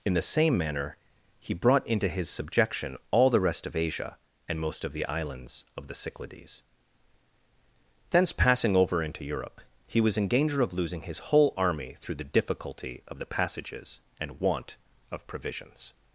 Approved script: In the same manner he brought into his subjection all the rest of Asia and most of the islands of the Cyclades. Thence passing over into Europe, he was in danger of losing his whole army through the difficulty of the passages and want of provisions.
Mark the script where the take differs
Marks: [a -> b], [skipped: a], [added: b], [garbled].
In the same manner he brought into his subjection all the rest of Asia and most of the islands of the Cyclades. Thence passing over into Europe, he was in danger of losing his whole army through the difficulty of the passages and want of provisions.